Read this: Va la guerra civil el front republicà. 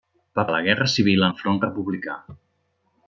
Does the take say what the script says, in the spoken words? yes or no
yes